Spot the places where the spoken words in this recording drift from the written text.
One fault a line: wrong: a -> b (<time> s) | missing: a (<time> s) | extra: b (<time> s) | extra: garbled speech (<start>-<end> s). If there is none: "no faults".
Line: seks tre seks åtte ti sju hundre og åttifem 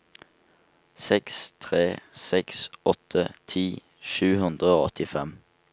no faults